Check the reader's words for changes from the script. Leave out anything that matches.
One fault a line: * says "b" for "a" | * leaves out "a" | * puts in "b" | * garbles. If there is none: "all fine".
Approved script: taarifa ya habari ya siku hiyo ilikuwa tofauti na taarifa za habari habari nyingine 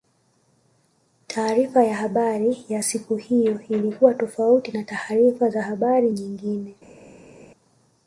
* leaves out "habari"